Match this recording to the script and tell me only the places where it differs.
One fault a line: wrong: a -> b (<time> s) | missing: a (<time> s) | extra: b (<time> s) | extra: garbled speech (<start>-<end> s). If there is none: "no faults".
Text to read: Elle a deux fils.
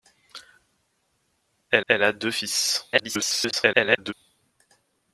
extra: elle (1.9 s)
extra: garbled speech (2.9-4.1 s)